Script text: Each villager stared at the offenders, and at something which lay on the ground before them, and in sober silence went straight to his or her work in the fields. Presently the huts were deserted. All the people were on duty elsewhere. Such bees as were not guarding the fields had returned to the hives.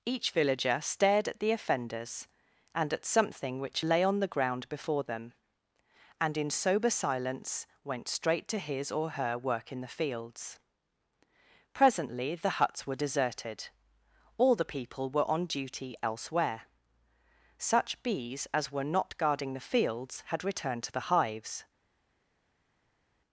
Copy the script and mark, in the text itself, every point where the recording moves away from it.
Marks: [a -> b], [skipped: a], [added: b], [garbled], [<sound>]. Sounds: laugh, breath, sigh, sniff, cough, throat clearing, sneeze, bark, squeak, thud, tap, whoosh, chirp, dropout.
Each villager stared at the offenders, and at something which lay on the ground before them, and in sober silence went straight to his or her work in the fields. Presently the huts were deserted. All the people were on duty elsewhere. Such bees as were not guarding the fields had returned to the hives.